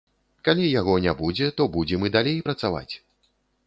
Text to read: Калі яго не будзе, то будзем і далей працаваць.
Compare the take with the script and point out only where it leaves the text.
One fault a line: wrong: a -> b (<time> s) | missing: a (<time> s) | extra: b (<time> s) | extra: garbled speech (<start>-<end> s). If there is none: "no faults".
no faults